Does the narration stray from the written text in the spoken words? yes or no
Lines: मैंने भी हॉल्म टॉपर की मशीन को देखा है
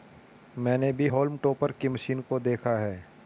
no